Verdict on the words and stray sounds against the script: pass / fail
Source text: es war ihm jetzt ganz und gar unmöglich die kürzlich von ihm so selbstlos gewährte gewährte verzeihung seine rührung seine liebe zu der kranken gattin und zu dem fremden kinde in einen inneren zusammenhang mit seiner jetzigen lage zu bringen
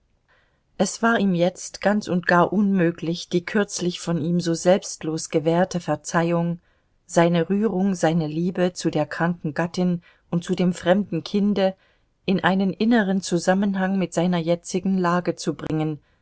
fail